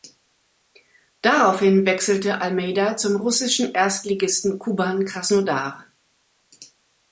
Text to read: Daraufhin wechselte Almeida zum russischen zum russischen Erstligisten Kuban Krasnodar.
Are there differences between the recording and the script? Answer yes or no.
yes